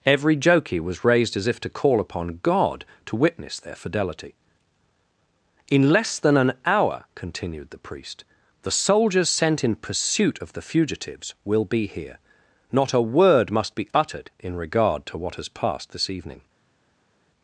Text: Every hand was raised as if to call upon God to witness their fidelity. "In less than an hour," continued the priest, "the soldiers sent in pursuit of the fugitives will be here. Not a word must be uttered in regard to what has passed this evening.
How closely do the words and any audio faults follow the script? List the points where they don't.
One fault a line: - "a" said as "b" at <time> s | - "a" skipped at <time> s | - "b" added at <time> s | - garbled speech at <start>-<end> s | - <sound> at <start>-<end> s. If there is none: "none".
- "hand" said as "jokey" at 0.3 s